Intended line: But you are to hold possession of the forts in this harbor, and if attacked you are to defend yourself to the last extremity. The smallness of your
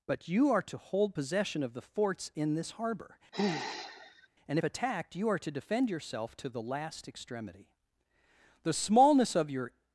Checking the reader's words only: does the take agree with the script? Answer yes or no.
yes